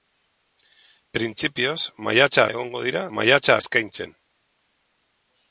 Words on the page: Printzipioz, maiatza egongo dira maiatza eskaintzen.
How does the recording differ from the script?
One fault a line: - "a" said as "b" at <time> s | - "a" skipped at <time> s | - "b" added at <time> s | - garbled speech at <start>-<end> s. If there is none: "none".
none